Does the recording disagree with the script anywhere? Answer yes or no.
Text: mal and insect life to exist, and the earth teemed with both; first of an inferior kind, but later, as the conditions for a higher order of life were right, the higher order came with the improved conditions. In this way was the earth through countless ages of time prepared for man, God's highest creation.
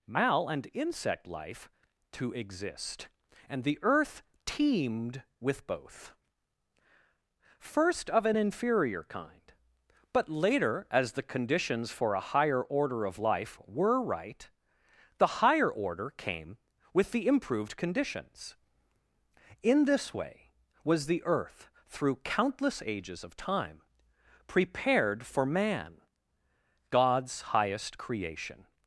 no